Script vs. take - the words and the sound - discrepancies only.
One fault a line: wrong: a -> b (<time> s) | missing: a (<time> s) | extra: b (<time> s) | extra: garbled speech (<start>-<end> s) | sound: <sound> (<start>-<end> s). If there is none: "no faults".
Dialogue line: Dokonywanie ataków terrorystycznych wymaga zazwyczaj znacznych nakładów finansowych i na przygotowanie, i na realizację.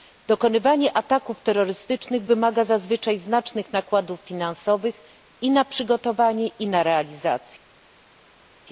no faults